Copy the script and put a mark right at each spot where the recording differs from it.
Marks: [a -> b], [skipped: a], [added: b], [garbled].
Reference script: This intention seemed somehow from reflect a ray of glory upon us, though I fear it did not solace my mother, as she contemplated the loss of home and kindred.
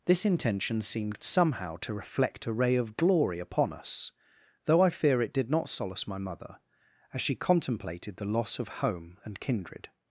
This intention seemed somehow [from -> to] reflect a ray of glory upon us, though I fear it did not solace my mother, as she contemplated the loss of home and kindred.